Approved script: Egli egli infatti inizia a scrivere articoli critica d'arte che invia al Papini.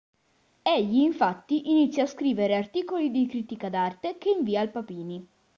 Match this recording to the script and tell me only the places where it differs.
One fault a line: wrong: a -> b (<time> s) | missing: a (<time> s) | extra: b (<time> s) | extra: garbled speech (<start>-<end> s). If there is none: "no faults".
missing: egli (1.0 s)
extra: di (3.1 s)